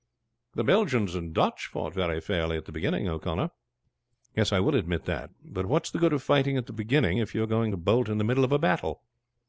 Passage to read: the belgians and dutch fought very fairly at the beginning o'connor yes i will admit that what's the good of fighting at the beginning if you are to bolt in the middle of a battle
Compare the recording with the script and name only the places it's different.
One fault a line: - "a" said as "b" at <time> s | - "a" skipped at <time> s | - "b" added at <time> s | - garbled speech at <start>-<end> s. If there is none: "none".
- "but" added at 5.5 s
- "going" added at 7.5 s